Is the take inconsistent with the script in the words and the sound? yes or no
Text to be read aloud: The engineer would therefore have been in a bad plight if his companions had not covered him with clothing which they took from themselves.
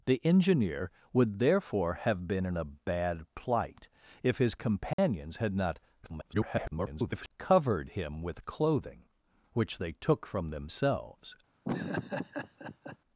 yes